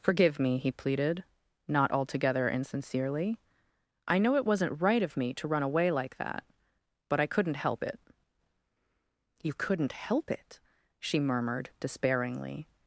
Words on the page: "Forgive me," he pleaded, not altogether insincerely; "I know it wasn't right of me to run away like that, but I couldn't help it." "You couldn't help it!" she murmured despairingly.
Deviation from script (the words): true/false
false